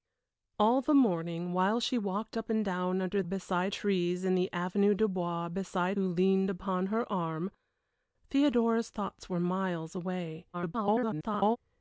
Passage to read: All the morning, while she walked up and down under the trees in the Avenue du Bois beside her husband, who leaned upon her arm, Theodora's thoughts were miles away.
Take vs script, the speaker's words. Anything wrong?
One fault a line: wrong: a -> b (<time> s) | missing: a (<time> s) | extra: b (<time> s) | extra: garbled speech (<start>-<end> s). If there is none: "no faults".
wrong: the -> beside (3.2 s)
missing: her husband (6.0 s)
extra: garbled speech (10.5-11.6 s)